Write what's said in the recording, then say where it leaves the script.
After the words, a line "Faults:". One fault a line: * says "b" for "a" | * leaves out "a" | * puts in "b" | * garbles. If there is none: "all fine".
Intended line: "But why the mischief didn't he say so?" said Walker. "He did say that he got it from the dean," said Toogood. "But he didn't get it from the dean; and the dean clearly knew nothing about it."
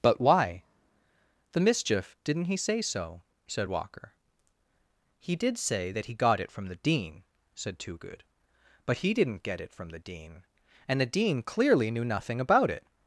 "But why the mischief didn't he say so?" said Walker. "He did say that he got it from the dean," said Toogood. "But he didn't get it from the dean; and the dean clearly knew nothing about it."
Faults:
all fine